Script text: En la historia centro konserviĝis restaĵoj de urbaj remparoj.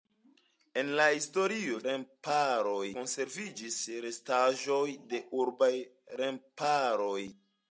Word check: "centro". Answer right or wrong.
wrong